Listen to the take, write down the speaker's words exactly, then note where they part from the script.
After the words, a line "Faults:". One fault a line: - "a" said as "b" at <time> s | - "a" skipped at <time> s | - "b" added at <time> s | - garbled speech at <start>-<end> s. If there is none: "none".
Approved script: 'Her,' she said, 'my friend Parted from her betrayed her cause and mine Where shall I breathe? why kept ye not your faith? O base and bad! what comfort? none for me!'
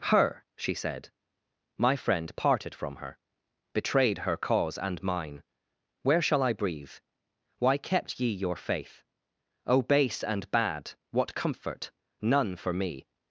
'Her,' she said, 'my friend Parted from her betrayed her cause and mine Where shall I breathe? why kept ye your faith? O base and bad! what comfort? none for me!'
Faults:
- "not" skipped at 8.3 s